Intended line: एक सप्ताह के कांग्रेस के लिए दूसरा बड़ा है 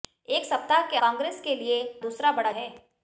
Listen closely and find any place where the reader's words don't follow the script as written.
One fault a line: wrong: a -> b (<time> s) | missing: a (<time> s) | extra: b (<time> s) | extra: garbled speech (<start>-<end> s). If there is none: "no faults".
no faults